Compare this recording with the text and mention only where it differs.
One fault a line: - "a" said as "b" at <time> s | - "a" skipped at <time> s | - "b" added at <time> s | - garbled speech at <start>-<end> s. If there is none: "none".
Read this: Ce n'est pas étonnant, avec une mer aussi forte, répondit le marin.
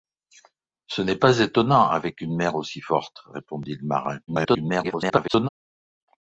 - garbled speech at 4.3-5.5 s